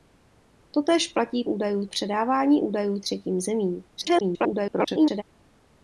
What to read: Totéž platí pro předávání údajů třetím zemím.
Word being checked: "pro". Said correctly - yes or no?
no